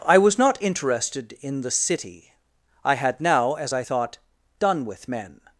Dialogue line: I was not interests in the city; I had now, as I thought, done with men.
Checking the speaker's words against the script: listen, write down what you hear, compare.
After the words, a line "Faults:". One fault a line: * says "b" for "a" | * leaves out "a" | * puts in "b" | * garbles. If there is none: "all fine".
I was not interested in the city; I had now, as I thought, done with men.
Faults:
* says "interested" for "interests"